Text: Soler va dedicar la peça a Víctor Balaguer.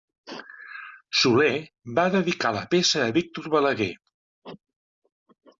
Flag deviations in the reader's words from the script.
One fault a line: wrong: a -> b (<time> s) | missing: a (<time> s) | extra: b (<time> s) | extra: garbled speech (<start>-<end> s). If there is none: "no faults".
no faults